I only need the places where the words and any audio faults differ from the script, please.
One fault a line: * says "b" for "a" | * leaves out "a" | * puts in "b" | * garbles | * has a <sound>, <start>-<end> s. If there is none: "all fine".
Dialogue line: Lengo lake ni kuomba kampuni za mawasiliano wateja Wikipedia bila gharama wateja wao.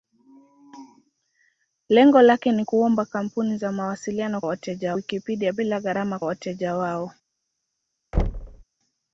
* has a thud, 8.1-8.6 s